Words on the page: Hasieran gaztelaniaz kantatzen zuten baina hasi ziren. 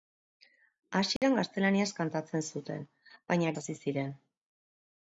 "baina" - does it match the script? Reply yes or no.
yes